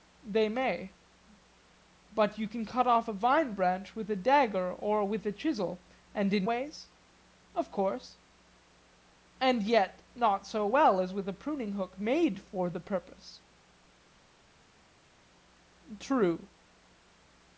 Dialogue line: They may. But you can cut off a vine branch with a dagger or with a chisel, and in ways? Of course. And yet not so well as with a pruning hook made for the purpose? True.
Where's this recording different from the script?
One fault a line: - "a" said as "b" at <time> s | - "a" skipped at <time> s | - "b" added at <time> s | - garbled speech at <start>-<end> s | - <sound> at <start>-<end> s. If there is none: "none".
none